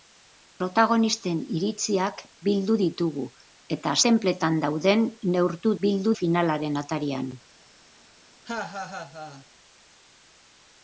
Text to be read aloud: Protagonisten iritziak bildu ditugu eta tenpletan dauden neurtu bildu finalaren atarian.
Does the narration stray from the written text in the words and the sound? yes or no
yes